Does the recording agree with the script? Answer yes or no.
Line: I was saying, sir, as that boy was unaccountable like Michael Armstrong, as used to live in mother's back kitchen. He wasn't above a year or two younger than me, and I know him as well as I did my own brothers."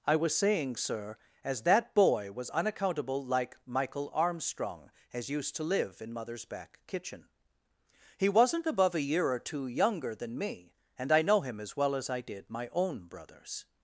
yes